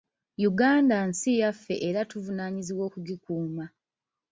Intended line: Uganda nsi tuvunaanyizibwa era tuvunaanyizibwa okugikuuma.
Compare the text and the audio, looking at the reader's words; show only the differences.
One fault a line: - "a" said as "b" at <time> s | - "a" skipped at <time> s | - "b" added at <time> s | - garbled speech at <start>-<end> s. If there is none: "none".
- "tuvunaanyizibwa" said as "yaffe" at 1.4 s